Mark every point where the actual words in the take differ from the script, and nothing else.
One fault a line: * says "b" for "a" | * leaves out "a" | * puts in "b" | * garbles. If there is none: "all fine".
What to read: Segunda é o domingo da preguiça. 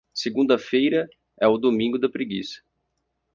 * puts in "feira"